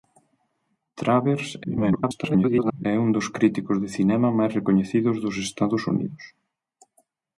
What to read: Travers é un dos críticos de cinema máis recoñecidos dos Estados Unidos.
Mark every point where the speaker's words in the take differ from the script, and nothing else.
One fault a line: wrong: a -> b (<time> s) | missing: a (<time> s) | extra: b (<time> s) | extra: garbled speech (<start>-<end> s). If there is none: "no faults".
extra: garbled speech (1.6-2.9 s)